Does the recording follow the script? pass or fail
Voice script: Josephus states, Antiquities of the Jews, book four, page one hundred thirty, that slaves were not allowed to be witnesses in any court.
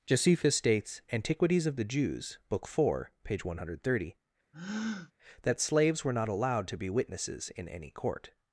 pass